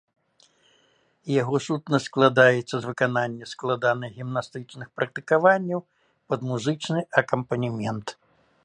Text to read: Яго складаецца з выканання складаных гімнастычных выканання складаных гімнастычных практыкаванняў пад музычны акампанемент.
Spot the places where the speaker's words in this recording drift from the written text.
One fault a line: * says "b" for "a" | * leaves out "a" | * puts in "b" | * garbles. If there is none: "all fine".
* puts in "сутнасць"
* leaves out "выканання складаных гімнастычных"